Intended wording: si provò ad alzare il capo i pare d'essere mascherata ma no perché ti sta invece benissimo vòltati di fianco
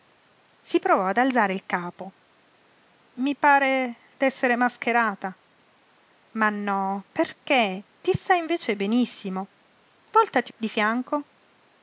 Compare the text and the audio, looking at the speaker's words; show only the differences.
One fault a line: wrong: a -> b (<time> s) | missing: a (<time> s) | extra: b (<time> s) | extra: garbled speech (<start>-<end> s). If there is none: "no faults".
no faults